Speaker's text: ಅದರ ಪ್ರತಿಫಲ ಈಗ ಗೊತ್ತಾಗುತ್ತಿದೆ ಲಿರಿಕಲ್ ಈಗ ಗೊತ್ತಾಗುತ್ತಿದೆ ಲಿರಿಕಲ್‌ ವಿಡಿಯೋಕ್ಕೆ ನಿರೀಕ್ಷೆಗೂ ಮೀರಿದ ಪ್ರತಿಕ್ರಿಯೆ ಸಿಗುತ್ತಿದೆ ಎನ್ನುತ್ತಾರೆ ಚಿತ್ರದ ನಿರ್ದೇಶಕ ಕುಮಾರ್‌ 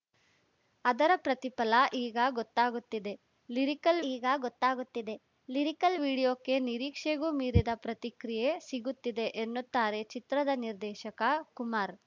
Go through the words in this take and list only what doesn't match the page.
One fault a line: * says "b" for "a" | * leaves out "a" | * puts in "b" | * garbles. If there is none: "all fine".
all fine